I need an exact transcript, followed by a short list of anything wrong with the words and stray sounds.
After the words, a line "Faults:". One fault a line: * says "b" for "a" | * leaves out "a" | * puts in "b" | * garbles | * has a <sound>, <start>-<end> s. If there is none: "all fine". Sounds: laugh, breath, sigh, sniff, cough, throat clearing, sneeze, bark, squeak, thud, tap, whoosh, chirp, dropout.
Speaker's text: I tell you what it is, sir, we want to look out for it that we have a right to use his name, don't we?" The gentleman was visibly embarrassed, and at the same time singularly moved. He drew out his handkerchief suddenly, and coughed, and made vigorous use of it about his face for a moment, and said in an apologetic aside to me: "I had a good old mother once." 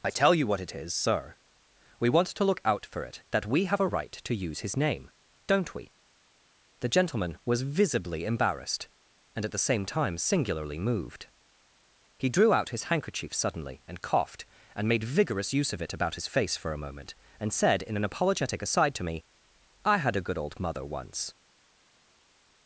I tell you what it is, sir, we want to look out for it that we have a right to use his name, don't we?" The gentleman was visibly embarrassed, and at the same time singularly moved. He drew out his handkerchief suddenly, and coughed, and made vigorous use of it about his face for a moment, and said in an apologetic aside to me: "I had a good old mother once."
Faults:
all fine